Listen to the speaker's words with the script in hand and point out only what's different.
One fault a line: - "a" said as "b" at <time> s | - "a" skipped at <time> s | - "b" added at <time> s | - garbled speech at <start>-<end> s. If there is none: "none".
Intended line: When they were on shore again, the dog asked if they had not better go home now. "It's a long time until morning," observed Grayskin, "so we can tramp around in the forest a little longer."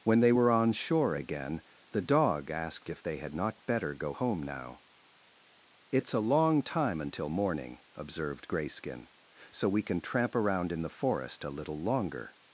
none